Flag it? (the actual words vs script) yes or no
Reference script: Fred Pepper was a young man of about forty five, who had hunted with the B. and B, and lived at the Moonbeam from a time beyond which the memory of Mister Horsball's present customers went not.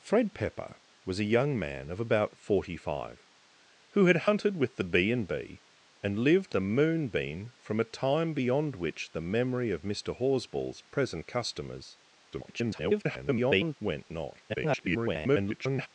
yes